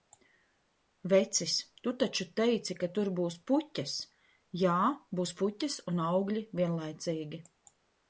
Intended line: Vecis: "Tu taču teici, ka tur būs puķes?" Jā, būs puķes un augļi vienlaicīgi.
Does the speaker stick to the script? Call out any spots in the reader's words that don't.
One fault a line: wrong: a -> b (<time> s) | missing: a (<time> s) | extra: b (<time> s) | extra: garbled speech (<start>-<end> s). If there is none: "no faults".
no faults